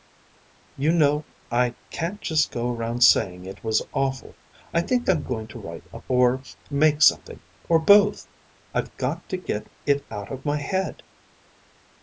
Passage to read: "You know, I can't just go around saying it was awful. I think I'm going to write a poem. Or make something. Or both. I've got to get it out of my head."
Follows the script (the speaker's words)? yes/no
no